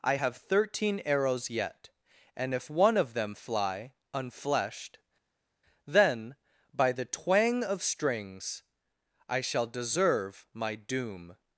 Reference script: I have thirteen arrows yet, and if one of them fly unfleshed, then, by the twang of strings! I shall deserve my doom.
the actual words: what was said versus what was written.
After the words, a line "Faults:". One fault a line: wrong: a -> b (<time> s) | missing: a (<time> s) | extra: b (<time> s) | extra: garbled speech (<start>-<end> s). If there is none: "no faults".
I have thirteen arrows yet, and if one of them fly unfleshed, then, by the twang of strings! I shall deserve my doom.
Faults:
no faults